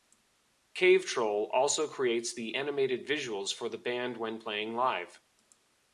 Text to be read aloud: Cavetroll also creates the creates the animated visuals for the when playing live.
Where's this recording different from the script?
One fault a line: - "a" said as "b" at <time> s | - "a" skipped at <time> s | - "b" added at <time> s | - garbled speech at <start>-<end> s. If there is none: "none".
- "creates the" skipped at 2.6 s
- "band" added at 3.8 s